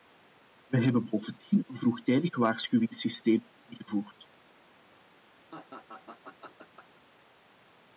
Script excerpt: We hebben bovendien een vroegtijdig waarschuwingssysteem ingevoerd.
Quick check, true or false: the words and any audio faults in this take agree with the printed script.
false